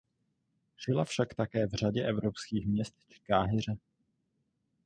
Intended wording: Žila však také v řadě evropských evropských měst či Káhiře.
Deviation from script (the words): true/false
true